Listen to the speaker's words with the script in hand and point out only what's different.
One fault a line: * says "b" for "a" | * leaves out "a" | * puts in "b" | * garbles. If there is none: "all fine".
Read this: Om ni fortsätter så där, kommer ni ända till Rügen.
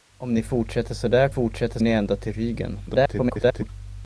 * says "fortsätter" for "kommer"
* garbles